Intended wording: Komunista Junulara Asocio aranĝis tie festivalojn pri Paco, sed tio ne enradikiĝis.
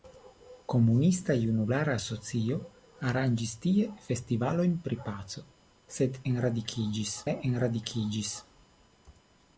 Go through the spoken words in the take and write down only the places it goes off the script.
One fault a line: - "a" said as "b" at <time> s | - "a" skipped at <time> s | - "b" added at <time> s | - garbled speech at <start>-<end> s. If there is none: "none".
- "tio" said as "enradikiĝis" at 6.3 s